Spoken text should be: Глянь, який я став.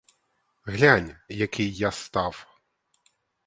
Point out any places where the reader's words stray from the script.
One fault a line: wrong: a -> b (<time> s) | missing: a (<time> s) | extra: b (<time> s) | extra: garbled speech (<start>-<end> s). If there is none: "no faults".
no faults